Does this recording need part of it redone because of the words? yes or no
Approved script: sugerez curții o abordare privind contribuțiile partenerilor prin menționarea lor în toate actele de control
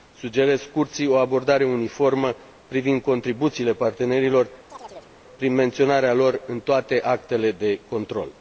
yes